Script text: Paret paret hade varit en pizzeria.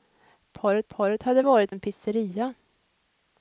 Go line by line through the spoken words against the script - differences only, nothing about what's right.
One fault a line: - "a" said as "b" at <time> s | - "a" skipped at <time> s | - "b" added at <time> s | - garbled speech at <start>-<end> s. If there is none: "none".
none